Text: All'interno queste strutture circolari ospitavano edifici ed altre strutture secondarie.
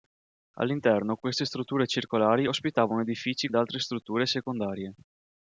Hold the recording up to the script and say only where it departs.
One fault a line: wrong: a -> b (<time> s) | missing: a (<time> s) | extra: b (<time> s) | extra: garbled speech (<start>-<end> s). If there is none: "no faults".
no faults